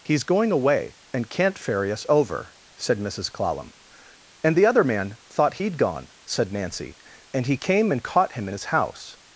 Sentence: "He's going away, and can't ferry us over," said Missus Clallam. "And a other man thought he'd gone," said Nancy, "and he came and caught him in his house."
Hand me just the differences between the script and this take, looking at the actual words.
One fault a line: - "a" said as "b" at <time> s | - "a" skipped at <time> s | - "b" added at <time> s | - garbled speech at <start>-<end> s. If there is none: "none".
- "a" said as "the" at 4.5 s